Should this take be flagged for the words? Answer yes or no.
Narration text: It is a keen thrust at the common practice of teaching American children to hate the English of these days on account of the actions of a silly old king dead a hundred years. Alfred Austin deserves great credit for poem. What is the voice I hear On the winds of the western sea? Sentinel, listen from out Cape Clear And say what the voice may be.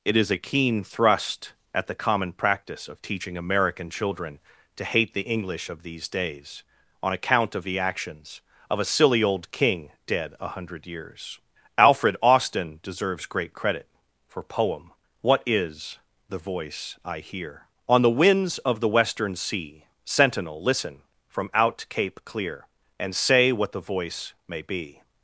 no